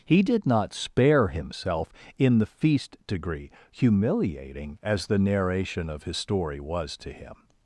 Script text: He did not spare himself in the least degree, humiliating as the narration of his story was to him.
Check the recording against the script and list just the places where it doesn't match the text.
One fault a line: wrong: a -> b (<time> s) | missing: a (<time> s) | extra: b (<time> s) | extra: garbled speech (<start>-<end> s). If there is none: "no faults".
wrong: least -> feast (2.5 s)